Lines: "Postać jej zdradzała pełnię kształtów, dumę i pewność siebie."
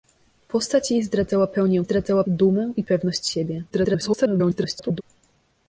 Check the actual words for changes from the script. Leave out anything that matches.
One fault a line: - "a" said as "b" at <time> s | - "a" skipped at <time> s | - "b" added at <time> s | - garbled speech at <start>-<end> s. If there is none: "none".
- "kształtów" said as "zdradzała" at 1.8 s
- garbled speech at 3.7-5.0 s